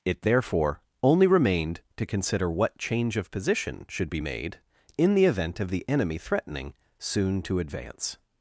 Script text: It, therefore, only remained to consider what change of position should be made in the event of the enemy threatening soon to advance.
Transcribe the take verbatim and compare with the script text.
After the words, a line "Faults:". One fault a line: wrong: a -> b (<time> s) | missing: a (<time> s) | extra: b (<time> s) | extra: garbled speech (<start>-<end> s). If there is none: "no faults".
It, therefore, only remained to consider what change of position should be made in the event of the enemy threatening soon to advance.
Faults:
no faults